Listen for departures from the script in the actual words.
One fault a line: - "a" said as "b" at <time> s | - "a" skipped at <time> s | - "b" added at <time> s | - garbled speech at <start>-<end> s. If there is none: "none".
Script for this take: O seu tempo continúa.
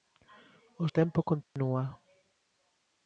- "seu" skipped at 0.9 s